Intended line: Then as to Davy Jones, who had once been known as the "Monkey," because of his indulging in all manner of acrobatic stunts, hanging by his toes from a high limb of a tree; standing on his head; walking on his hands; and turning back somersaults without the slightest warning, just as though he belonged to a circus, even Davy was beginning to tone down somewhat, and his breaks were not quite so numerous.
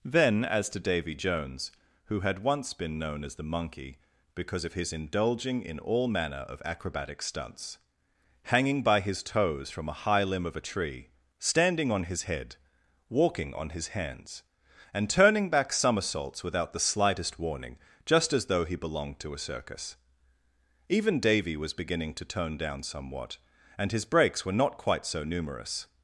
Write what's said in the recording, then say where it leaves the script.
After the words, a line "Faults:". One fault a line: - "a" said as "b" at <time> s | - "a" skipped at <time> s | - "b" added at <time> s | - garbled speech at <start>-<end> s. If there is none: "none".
Then as to Davy Jones, who had once been known as the "Monkey," because of his indulging in all manner of acrobatic stunts, hanging by his toes from a high limb of a tree; standing on his head; walking on his hands; and turning back somersaults without the slightest warning, just as though he belonged to a circus, even Davy was beginning to tone down somewhat, and his breaks were not quite so numerous.
Faults:
none